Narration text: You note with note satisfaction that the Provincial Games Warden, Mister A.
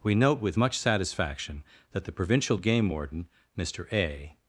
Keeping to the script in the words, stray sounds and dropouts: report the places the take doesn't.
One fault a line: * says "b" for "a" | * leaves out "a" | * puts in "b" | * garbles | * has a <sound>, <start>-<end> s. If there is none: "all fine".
* says "We" for "You"
* says "much" for "note"
* says "Game" for "Games"